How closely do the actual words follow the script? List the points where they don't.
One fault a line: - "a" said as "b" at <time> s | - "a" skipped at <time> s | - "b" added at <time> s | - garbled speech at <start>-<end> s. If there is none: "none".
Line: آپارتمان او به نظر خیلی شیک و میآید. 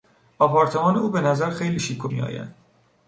none